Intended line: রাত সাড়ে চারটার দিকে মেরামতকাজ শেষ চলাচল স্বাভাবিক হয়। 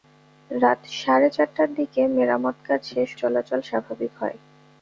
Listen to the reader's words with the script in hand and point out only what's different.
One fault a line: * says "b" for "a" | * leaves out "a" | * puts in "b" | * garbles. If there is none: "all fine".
all fine